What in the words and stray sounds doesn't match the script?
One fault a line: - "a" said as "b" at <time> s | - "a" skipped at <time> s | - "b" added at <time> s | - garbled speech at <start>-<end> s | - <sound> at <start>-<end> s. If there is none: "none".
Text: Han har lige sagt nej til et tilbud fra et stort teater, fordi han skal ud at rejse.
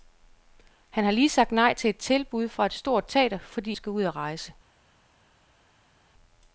- "han" skipped at 3.8 s